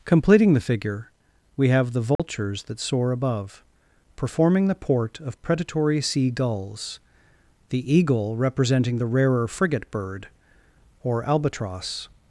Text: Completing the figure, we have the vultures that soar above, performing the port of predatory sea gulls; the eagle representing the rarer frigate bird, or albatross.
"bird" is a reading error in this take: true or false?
false